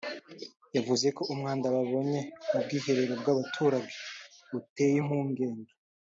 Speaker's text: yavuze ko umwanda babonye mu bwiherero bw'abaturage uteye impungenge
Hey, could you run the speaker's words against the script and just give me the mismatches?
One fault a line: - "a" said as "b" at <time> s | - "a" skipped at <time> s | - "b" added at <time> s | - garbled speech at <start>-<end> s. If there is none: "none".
none